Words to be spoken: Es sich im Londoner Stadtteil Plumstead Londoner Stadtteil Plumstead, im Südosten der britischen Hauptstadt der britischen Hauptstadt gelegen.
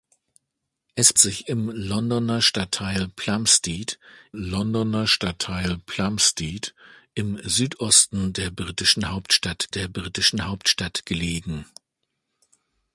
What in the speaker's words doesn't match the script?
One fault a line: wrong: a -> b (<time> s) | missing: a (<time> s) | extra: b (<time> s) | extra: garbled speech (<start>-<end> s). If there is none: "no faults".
no faults